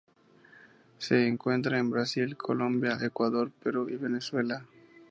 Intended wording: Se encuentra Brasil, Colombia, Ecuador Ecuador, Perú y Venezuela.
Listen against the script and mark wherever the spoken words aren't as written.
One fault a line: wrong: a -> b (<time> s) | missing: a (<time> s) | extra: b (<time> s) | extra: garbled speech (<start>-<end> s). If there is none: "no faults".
extra: en (1.8 s)
missing: Ecuador (3.5 s)